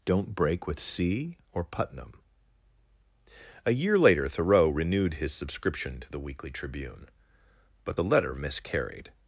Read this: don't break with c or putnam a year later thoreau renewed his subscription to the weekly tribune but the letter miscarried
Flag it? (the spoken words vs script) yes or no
no